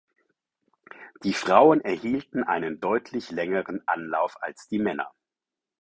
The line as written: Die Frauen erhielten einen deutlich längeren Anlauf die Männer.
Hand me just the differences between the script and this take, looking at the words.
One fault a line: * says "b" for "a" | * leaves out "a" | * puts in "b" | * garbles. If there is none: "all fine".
* puts in "als"